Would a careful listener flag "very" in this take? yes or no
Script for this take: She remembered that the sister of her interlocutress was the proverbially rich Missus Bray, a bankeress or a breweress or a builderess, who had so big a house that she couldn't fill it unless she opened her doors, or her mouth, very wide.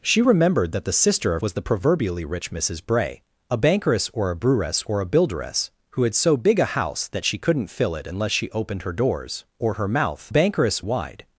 yes